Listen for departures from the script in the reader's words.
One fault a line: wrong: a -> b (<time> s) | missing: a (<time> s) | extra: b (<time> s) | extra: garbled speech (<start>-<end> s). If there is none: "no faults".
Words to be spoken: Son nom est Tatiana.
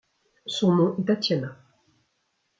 no faults